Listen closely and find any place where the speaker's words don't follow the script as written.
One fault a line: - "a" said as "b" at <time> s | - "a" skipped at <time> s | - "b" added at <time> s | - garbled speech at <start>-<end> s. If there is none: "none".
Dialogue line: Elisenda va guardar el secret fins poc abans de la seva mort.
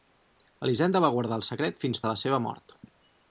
- "poc abans" skipped at 2.0 s